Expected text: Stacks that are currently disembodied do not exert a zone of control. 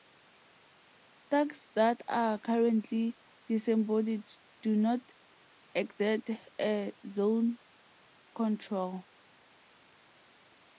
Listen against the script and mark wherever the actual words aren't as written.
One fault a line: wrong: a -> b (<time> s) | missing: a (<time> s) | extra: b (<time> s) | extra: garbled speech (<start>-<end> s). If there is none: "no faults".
missing: of (7.6 s)